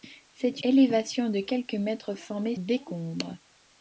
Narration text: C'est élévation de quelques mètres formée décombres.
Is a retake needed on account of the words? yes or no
no